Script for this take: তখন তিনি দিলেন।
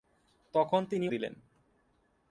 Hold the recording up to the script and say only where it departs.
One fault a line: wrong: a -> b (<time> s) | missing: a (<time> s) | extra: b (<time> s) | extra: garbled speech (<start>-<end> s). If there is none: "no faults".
no faults